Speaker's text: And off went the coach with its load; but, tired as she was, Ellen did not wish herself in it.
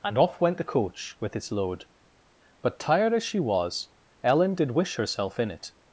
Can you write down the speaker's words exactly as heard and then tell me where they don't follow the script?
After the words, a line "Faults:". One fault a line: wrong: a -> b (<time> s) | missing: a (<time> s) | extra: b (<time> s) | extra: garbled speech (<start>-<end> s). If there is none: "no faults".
And off went the coach with its load; but, tired as she was, Ellen did wish herself in it.
Faults:
missing: not (4.7 s)